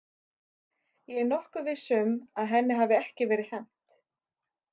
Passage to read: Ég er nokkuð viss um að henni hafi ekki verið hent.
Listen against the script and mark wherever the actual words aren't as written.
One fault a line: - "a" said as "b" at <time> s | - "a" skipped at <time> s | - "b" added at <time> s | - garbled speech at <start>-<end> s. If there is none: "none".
none